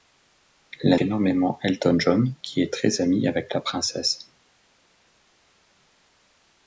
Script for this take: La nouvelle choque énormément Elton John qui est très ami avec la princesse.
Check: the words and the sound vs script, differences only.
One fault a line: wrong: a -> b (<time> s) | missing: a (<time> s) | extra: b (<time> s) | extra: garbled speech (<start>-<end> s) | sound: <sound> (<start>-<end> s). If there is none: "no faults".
missing: nouvelle choque (1.0 s)